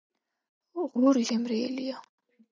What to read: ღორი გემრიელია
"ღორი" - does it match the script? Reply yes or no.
yes